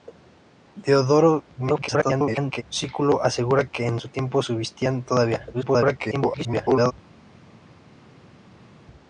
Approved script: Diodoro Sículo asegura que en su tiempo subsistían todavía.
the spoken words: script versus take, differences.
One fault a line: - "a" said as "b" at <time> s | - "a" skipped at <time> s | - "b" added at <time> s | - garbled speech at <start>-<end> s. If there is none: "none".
- garbled speech at 1.6-2.6 s
- garbled speech at 5.5-6.9 s